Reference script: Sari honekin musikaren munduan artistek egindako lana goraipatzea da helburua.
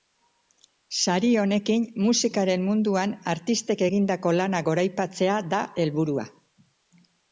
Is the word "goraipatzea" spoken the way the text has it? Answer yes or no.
yes